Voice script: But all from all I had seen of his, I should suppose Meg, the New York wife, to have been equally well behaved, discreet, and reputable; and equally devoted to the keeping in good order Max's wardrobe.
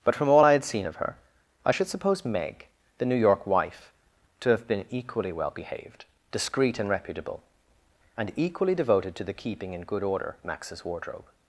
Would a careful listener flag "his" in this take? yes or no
yes